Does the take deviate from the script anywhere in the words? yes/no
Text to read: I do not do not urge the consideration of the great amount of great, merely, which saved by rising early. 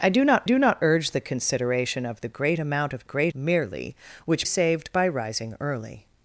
no